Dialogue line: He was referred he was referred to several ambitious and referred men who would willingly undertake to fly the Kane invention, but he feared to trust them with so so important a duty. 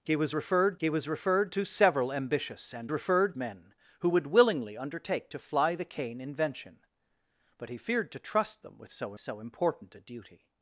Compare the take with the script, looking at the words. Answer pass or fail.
pass